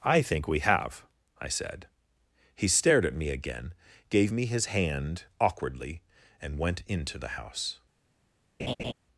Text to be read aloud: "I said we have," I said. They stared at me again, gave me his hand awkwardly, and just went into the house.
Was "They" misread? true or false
true